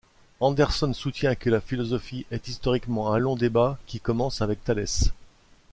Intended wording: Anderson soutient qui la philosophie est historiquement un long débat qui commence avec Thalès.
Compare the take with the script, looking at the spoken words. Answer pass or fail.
fail